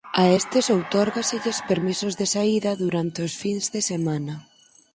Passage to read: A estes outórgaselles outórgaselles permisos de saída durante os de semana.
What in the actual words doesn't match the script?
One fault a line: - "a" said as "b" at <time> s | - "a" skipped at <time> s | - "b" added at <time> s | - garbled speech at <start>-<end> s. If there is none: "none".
- "outórgaselles" skipped at 1.6 s
- "fins" added at 3.4 s